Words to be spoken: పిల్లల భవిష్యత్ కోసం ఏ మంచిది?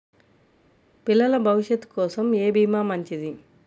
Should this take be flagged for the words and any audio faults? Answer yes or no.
yes